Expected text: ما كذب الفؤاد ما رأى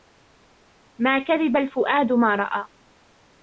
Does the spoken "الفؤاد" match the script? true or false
true